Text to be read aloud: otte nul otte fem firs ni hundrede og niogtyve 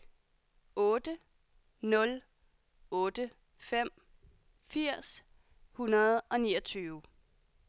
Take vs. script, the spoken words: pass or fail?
fail